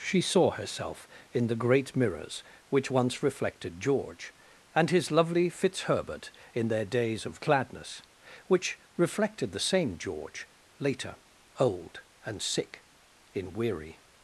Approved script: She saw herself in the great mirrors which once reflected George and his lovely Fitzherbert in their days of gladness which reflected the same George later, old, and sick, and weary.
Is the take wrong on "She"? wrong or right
right